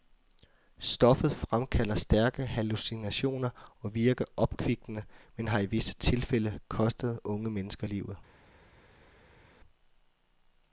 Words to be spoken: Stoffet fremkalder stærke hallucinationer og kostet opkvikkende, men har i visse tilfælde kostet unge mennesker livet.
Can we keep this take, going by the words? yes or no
no